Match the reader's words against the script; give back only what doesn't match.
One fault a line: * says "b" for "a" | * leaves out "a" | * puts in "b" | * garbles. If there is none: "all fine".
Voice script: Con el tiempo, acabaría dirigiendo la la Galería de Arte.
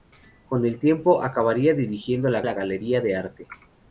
all fine